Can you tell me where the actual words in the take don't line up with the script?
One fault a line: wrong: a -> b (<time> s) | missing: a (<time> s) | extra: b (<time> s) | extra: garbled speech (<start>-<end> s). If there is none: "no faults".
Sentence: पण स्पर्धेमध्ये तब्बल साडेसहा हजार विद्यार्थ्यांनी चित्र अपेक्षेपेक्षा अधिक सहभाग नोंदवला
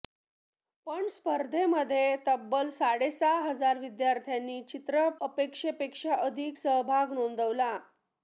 no faults